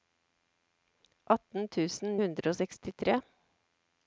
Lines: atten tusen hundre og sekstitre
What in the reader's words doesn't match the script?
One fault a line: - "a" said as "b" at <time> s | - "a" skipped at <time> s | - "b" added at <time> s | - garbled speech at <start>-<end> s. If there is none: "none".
none